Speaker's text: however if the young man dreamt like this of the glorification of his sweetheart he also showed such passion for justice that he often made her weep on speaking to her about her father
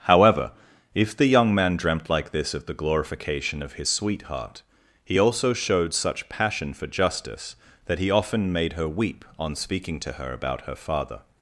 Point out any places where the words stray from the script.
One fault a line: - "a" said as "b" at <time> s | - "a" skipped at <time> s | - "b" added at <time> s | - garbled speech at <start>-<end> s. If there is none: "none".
none